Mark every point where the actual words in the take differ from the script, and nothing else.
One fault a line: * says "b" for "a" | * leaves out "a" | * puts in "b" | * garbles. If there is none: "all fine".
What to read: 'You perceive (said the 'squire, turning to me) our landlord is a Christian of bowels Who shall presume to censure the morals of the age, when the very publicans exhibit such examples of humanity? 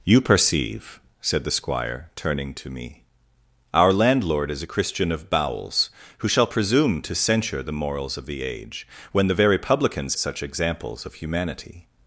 * leaves out "exhibit"